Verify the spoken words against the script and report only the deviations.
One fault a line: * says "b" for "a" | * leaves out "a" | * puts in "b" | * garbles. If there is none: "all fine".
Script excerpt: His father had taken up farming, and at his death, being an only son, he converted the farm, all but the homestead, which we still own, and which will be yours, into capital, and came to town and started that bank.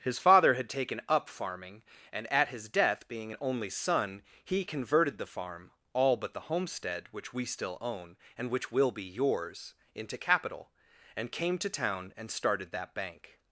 all fine